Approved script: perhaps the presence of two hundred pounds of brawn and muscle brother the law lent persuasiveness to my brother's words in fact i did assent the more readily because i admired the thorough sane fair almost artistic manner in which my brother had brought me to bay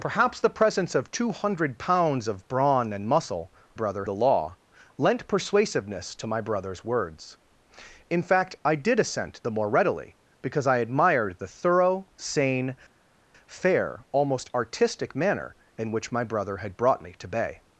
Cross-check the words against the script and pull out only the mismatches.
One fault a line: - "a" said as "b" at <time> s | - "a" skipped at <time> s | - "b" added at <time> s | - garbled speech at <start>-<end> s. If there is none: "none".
none